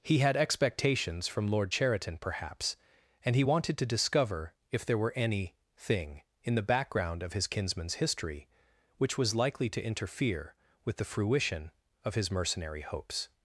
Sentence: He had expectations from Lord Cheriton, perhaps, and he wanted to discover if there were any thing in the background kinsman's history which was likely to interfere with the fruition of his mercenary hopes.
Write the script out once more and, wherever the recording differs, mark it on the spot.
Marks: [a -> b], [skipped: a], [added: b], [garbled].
He had expectations from Lord Cheriton, perhaps, and he wanted to discover if there were any thing in the background [added: of his] kinsman's history which was likely to interfere with the fruition of his mercenary hopes.